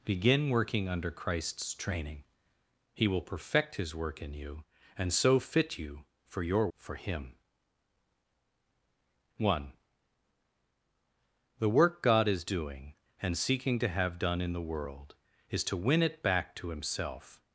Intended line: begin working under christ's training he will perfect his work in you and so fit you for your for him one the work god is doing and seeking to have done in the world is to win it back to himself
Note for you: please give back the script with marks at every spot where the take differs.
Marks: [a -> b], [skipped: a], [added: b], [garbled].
begin working under christ's training he will perfect his work in you and so fit you for your for him one the work god is doing and seeking to have done in the world is to win it back to himself